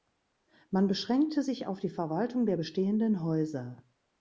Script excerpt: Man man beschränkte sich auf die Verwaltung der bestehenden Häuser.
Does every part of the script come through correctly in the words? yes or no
no